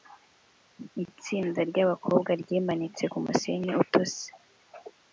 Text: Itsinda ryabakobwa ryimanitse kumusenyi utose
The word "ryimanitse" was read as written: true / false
true